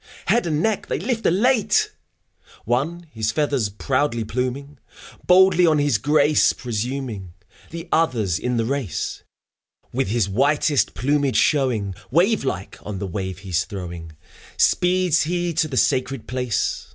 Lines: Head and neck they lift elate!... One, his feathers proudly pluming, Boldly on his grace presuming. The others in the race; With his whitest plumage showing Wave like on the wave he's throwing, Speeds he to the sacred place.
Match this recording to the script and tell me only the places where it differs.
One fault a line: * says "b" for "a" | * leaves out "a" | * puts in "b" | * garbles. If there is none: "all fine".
all fine